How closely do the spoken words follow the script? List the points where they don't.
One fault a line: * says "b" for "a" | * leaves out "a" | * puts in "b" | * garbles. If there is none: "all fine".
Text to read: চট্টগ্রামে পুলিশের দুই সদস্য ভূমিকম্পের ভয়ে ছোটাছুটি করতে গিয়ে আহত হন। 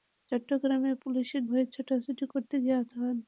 * leaves out "দুই সদস্য ভূমিকম্পের"